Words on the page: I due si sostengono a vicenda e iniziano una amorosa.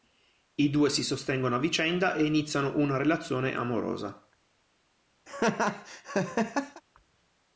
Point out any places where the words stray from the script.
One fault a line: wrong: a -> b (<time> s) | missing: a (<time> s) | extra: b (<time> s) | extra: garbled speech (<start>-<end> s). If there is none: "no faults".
extra: relazione (3.0 s)